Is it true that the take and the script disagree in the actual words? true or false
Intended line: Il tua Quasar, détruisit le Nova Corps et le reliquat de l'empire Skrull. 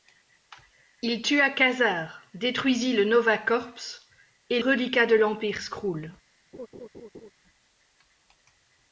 true